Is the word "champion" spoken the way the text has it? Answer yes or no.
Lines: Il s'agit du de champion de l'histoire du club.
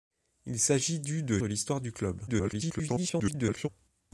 no